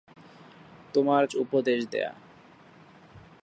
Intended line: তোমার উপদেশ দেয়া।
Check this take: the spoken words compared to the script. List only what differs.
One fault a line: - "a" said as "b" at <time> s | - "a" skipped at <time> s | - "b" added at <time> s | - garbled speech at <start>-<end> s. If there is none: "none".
none